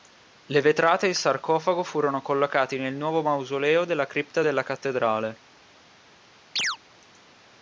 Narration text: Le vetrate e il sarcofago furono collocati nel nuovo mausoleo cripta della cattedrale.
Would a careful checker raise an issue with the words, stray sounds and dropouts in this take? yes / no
yes